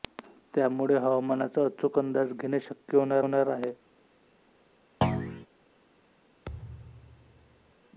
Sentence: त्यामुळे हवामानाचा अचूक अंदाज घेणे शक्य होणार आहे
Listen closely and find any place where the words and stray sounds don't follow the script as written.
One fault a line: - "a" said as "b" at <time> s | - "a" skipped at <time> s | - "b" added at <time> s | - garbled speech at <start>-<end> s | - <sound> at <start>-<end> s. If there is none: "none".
- "होणार" added at 3.2 s
- thud at 5.0-5.5 s
- thud at 6.5-7.8 s